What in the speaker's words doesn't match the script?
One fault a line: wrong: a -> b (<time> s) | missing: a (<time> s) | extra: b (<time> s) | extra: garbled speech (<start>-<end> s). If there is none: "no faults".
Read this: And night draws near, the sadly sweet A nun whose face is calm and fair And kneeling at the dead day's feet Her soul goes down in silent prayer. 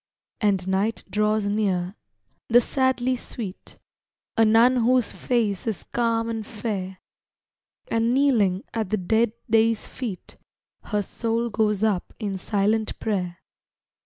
wrong: down -> up (11.8 s)